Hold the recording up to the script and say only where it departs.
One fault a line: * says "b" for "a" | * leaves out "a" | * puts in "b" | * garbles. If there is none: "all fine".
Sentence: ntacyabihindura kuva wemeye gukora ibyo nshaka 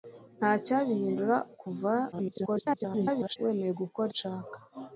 * garbles
* leaves out "ibyo"